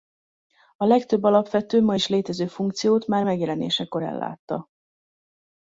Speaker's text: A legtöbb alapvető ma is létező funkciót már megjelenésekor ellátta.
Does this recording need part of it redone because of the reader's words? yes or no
no